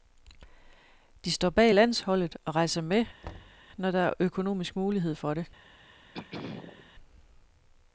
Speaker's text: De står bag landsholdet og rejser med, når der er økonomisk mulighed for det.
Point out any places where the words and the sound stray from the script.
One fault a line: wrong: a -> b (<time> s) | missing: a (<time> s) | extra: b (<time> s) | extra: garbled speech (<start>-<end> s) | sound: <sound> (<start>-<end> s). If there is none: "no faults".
sound: thud (3.2-3.6 s)
sound: throat clearing (6.1-6.9 s)